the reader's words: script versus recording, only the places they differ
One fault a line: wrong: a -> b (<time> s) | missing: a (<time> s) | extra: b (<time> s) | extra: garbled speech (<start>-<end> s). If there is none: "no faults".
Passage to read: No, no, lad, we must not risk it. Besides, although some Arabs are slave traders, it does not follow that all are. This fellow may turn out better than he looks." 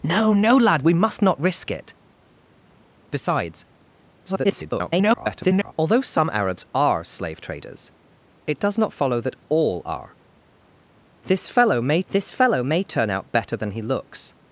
extra: garbled speech (4.2-5.7 s)
extra: this fellow may (12.1 s)